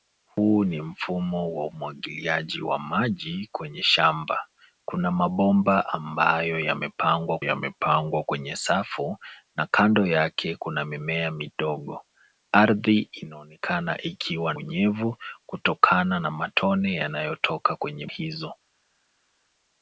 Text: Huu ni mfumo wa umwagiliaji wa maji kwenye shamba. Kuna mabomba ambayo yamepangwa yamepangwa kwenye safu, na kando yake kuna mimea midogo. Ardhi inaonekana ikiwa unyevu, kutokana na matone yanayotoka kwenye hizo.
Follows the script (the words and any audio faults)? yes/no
yes